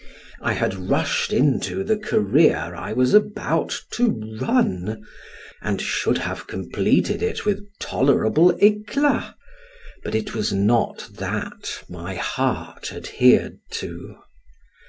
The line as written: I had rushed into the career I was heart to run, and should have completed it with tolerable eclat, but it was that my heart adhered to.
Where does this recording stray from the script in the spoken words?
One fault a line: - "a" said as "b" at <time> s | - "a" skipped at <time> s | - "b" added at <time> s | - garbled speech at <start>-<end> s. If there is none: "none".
- "heart" said as "about" at 3.1 s
- "not" added at 10.5 s